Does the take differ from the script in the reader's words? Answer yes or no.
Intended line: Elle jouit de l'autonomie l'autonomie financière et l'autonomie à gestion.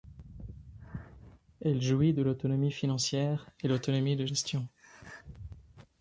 yes